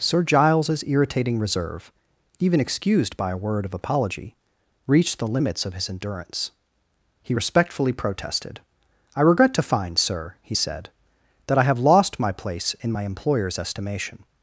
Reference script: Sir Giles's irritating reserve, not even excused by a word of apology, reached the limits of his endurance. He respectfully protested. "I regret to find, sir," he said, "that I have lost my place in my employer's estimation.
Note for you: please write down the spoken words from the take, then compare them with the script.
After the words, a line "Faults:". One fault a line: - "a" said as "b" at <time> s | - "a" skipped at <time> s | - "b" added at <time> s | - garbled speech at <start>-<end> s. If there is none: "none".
Sir Giles's irritating reserve, even excused by a word of apology, reached the limits of his endurance. He respectfully protested. "I regret to find, sir," he said, "that I have lost my place in my employer's estimation.
Faults:
- "not" skipped at 1.9 s